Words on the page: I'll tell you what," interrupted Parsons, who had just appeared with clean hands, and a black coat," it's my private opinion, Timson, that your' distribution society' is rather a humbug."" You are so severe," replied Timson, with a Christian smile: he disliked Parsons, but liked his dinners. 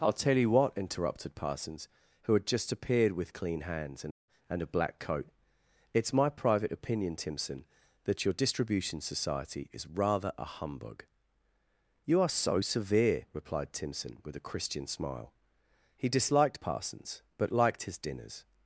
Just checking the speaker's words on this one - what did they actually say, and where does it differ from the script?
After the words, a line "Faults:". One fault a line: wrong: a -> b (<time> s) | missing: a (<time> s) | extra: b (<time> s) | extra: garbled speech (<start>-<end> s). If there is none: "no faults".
I'll tell you what," interrupted Parsons, who had just appeared with clean hands, and and a black coat," it's my private opinion, Timson, that your' distribution society' is rather a humbug."" You are so severe," replied Timson, with a Christian smile: he disliked Parsons, but liked his dinners.
Faults:
extra: and (4.5 s)